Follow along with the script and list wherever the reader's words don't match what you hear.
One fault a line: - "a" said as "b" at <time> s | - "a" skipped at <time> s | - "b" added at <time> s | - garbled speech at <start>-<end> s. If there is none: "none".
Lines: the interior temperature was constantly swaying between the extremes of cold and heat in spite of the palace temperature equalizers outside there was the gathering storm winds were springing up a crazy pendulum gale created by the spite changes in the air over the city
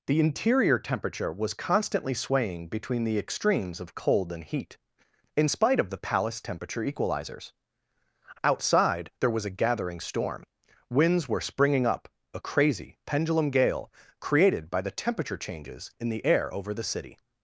- "the" said as "a" at 9.4 s
- "spite" said as "temperature" at 14.9 s